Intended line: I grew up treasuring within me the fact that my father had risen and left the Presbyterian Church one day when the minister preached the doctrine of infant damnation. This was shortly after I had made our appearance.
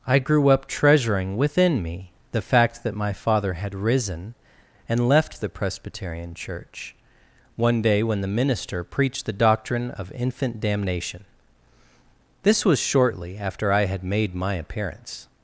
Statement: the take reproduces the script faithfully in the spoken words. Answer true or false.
false